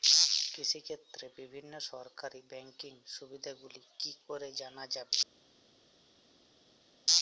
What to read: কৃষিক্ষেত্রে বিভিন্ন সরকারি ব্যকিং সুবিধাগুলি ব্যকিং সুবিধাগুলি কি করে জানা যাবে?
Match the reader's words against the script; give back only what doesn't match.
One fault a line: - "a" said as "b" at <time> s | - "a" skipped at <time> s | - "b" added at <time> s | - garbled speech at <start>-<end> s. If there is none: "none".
- "ব্যকিং সুবিধাগুলি" skipped at 3.8 s